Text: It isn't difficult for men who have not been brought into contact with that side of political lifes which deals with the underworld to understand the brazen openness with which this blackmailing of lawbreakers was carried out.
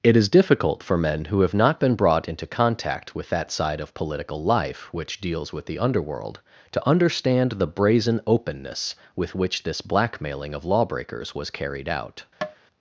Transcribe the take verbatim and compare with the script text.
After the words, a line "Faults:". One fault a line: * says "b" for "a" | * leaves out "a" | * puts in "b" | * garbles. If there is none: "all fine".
It is difficult for men who have not been brought into contact with that side of political life which deals with the underworld to understand the brazen openness with which this blackmailing of lawbreakers was carried out.
Faults:
* says "is" for "isn't"
* says "life" for "lifes"